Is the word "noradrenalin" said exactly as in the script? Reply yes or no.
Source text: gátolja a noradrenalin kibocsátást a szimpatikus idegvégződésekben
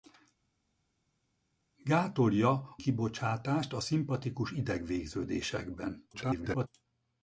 no